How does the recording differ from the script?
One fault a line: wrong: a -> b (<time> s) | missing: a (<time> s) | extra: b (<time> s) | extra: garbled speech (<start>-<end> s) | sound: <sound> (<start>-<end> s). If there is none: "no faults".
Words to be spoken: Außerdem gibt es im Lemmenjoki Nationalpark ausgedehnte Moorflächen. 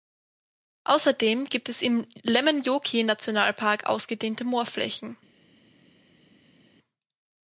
no faults